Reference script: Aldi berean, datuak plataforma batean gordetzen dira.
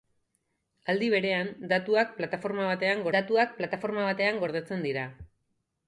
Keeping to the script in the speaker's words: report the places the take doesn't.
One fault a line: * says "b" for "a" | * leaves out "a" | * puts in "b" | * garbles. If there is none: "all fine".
* puts in "datuak plataforma batean"